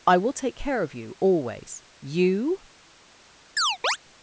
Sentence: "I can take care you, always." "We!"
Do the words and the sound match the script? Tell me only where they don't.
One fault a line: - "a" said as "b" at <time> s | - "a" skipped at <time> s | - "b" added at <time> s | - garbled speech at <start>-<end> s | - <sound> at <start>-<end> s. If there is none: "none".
- "can" said as "will" at 0.2 s
- "of" added at 0.8 s
- "We" said as "You" at 2.0 s
- chirp at 3.6-4.0 s